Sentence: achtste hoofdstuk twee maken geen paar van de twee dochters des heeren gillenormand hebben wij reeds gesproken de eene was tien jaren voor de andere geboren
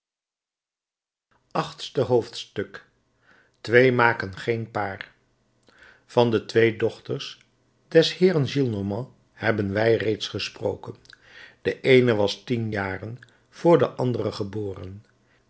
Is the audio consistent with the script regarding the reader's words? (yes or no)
yes